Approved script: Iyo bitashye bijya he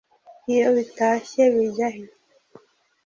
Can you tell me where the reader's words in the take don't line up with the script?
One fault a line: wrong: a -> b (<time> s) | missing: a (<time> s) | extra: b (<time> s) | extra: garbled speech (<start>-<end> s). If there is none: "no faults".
no faults